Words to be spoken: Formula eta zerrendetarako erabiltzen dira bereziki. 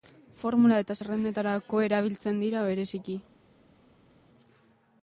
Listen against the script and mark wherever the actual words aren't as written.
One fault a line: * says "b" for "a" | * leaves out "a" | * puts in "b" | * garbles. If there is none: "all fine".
all fine